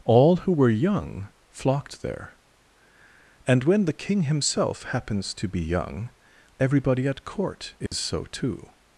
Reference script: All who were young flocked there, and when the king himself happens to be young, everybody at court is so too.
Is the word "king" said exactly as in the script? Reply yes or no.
yes